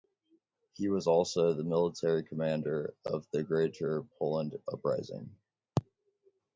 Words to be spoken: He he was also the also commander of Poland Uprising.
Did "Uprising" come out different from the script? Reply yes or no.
no